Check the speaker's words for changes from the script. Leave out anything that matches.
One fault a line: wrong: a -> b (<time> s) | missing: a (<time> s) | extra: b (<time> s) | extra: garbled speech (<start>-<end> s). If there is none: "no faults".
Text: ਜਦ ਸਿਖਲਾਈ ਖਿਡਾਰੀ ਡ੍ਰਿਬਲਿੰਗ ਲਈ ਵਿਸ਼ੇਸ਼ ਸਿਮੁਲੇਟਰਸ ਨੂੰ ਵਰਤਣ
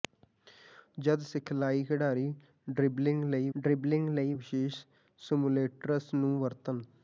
extra: ਡ੍ਰਿਬਲਿੰਗ ਲਈ (3.6 s)